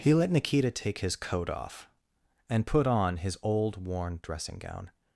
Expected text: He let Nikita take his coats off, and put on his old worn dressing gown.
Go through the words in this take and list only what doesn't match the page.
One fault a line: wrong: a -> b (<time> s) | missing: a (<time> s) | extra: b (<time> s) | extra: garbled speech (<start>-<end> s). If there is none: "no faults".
wrong: coats -> coat (1.1 s)